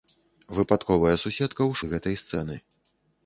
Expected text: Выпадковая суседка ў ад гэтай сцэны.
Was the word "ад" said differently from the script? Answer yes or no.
no